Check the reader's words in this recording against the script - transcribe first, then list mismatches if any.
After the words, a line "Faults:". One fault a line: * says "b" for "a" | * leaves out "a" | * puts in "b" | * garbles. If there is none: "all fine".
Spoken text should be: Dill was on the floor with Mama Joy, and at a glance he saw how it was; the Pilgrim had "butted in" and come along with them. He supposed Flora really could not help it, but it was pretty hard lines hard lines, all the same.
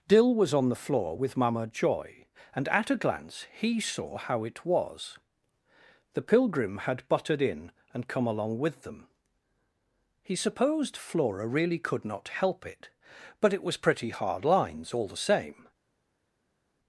Dill was on the floor with Mama Joy, and at a glance he saw how it was; the Pilgrim had "butted in" and come along with them. He supposed Flora really could not help it, but it was pretty hard lines, all the same.
Faults:
* leaves out "hard lines"